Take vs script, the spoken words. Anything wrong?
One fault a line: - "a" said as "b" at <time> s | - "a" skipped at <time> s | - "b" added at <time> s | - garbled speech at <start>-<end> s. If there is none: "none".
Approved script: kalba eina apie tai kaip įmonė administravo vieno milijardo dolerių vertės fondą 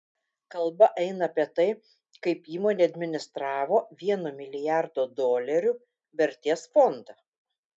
none